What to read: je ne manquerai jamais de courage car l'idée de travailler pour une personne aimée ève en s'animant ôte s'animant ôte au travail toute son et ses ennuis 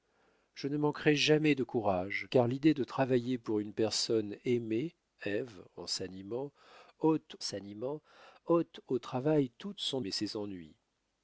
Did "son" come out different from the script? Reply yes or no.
no